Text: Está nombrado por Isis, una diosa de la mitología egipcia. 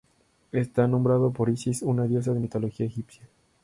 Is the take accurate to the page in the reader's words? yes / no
yes